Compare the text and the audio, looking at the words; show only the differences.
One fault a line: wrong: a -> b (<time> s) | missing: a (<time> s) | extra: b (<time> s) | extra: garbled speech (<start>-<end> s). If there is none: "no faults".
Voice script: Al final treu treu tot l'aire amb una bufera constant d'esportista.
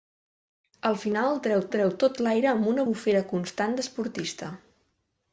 no faults